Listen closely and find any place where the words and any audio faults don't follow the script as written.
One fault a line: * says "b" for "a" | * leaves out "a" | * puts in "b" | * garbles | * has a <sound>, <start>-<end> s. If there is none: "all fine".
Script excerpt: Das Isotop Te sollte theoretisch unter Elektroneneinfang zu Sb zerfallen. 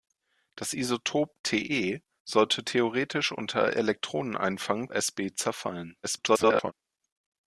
* leaves out "zu"
* garbles